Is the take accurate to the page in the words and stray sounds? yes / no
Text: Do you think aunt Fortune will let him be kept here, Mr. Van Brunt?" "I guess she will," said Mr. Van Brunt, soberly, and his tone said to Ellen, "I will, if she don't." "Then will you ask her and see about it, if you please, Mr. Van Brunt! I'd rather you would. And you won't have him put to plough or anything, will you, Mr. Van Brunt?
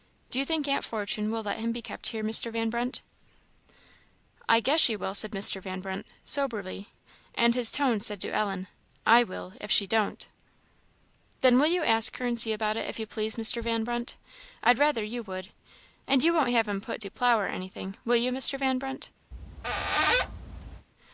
no